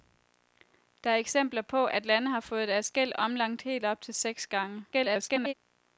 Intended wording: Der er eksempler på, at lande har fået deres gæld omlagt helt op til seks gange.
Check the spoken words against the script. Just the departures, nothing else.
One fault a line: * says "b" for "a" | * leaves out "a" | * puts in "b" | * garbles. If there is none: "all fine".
* garbles